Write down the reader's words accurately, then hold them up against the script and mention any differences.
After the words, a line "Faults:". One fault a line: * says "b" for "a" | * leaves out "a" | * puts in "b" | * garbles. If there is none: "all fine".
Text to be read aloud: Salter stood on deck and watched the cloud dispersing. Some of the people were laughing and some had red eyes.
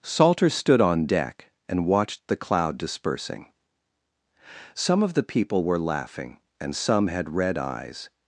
Salter stood on deck and watched the cloud dispersing. Some of the people were laughing and some had red eyes.
Faults:
all fine